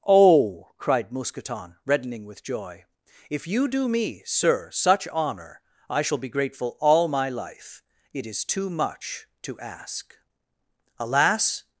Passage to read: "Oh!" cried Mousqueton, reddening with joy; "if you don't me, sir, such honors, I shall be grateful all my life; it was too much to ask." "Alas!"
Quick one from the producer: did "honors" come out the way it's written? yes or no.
no